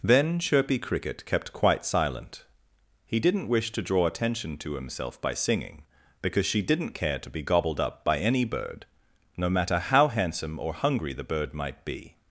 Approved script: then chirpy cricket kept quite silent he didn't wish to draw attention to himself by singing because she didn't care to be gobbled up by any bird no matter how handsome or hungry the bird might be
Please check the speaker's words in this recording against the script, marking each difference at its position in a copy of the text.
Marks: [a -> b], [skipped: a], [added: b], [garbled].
then chirpy cricket kept quite silent he didn't wish to draw attention to himself by singing because she didn't care to be gobbled up by any bird no matter how handsome or hungry the bird might be